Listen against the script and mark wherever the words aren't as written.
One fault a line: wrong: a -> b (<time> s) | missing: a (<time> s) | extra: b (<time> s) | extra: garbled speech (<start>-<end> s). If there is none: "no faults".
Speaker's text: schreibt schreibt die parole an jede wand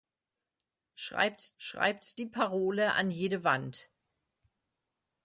no faults